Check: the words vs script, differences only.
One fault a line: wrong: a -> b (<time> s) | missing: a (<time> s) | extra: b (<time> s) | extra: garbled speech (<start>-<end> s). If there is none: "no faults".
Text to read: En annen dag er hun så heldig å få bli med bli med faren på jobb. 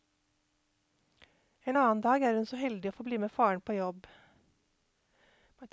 missing: bli med (3.3 s)